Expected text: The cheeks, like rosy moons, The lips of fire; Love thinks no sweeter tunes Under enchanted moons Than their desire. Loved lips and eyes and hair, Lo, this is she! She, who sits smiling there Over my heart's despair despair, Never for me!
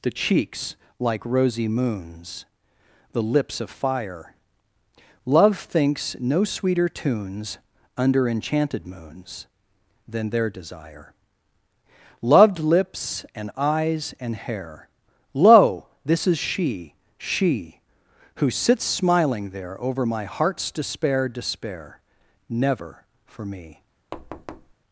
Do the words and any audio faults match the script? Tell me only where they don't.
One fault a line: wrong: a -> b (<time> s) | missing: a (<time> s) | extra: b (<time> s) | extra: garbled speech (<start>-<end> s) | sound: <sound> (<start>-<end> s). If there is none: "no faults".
sound: thud (24.1-24.7 s)